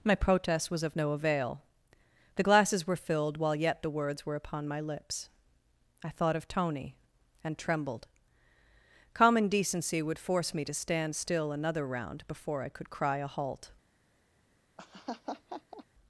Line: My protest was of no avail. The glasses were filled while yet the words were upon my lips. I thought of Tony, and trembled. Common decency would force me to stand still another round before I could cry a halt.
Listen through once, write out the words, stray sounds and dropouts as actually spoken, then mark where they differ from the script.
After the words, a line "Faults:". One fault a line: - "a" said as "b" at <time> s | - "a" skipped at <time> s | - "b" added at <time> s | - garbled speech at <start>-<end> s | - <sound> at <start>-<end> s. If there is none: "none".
My protest was of no avail. The glasses were filled while yet the words were upon my lips. I thought of Tony, and trembled. Common decency would force me to stand still another round before I could cry a halt.
Faults:
- laugh at 14.8-15.8 s